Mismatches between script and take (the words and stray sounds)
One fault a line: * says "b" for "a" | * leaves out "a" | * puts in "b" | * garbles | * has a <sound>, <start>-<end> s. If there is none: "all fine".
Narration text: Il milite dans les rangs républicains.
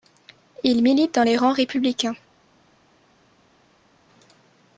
all fine